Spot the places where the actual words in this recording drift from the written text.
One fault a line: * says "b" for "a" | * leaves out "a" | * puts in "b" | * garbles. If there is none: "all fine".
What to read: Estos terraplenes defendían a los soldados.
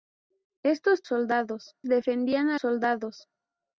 * says "soldados" for "terraplenes"
* leaves out "los"